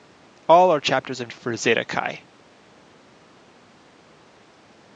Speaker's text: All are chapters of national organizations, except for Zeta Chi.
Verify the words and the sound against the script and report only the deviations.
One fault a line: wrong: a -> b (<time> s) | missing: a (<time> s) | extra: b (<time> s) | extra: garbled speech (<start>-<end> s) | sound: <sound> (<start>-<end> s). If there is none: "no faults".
missing: national organizations except (1.3 s)